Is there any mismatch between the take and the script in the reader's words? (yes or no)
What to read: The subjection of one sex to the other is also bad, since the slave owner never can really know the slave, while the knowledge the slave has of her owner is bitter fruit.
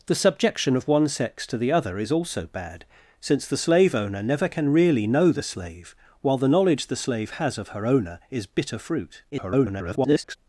yes